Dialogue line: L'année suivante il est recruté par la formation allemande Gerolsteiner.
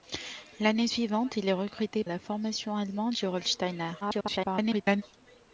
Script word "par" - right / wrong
wrong